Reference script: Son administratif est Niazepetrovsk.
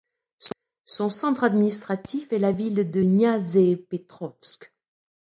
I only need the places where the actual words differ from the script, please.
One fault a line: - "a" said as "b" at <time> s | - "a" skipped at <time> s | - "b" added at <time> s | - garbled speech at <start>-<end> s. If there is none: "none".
- "centre" added at 1.1 s
- "la ville de" added at 2.4 s